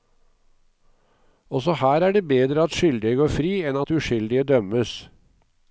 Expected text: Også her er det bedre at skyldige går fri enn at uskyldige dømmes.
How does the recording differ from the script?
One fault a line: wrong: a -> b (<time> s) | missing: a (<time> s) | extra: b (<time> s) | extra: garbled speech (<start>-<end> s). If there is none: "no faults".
no faults